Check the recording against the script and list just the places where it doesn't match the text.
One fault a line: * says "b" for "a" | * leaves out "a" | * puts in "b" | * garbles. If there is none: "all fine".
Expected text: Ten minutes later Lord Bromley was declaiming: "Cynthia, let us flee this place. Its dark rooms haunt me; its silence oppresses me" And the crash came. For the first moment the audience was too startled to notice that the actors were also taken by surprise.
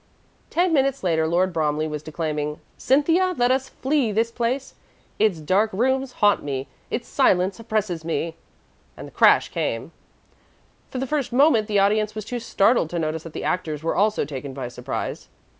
all fine